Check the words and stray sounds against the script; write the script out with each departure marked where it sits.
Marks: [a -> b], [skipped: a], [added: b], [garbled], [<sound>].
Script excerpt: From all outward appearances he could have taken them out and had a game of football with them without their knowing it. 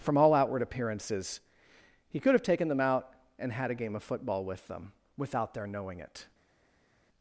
From all outward appearances he could have taken them out and had a game of football with them without their knowing it.